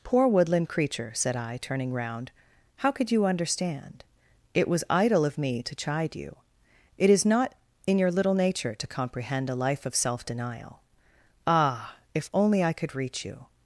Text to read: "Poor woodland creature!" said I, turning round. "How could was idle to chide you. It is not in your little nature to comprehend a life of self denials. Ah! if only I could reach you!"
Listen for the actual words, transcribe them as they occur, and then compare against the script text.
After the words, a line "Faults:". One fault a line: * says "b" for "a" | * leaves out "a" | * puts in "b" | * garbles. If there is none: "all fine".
"Poor woodland creature!" said I, turning round. "How could you understand? It was idle of me to chide you. It is not in your little nature to comprehend a life of self denial. Ah! if only I could reach you!"
Faults:
* puts in "you understand It"
* puts in "of me"
* says "denial" for "denials"